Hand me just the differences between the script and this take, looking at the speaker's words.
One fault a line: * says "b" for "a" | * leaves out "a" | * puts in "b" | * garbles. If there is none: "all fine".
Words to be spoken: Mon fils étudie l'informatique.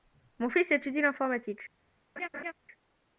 all fine